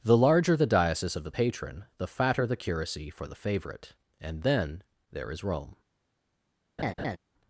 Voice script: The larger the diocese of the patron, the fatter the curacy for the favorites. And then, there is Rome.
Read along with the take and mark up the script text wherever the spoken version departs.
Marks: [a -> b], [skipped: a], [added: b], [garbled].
The larger the diocese of the patron, the fatter the curacy for the [favorites. -> favorite] And then, there is Rome.